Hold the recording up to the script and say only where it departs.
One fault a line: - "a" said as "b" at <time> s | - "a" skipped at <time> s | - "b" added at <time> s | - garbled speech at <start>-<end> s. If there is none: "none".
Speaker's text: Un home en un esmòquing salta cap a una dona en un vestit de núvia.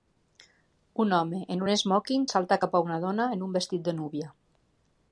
none